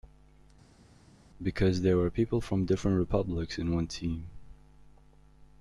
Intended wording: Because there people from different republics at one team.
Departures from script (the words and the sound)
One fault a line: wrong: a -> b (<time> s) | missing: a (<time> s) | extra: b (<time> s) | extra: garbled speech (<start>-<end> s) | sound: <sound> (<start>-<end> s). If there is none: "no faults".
extra: were (2.0 s)
wrong: at -> in (3.6 s)